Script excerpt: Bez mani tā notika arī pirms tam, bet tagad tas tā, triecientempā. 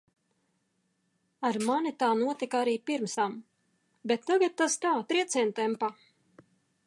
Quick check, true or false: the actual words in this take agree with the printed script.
false